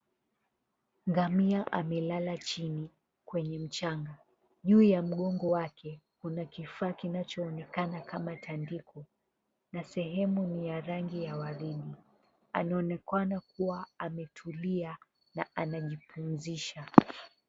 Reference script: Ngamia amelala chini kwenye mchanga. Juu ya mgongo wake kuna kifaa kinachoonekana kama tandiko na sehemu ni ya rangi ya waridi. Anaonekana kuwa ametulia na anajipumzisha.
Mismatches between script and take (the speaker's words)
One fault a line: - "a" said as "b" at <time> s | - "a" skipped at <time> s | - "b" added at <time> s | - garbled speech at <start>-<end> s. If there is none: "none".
none